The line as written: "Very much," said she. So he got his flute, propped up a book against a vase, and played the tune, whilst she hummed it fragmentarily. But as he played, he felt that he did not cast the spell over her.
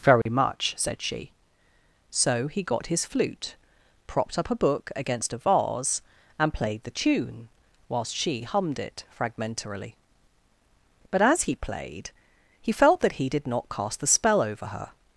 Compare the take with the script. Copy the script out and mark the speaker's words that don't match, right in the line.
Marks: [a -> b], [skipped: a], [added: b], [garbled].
"Very much," said she. So he got his flute, propped up a book against a vase, and played the tune, whilst she hummed it fragmentarily. But as he played, he felt that he did not cast the spell over her.